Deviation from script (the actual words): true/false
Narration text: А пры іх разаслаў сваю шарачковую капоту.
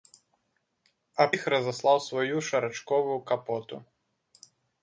true